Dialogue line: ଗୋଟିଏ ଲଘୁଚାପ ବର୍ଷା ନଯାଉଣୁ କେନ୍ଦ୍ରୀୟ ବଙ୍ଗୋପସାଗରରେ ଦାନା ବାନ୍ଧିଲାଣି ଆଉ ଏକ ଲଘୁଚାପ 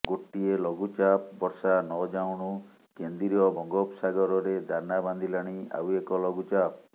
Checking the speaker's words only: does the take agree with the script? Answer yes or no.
yes